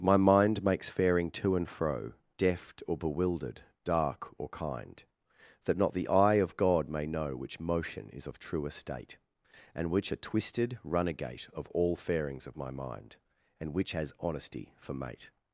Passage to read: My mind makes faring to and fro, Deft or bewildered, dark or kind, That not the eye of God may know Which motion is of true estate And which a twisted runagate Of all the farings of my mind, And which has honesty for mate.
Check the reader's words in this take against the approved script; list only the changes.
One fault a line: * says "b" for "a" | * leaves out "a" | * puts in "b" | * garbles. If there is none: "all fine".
* leaves out "the"